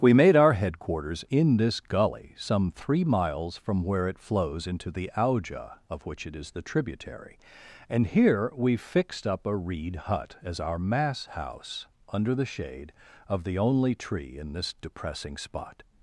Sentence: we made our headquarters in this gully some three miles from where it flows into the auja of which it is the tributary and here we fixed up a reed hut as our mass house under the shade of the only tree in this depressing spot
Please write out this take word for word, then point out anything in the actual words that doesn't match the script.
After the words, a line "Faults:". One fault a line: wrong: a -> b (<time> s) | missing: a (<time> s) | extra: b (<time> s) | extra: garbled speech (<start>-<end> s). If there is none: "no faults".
we made our headquarters in this gully some three miles from where it flows into the auja of which it is the tributary and here we fixed up a reed hut as our mass house under the shade of the only tree in this depressing spot
Faults:
no faults